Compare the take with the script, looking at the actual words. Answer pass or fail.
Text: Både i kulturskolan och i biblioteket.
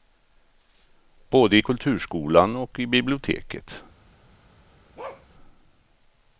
pass